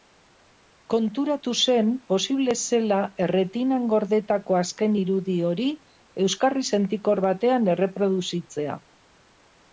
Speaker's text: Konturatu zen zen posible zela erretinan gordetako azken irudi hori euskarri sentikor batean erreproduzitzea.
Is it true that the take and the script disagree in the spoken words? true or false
true